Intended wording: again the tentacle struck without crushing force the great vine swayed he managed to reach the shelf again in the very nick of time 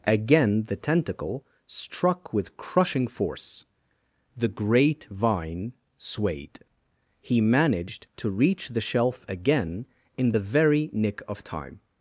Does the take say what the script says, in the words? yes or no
no